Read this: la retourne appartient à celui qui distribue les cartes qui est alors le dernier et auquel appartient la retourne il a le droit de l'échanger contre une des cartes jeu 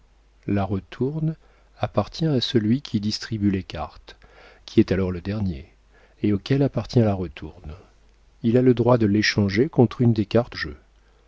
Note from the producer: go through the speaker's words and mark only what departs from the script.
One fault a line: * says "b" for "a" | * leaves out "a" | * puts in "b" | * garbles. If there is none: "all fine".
all fine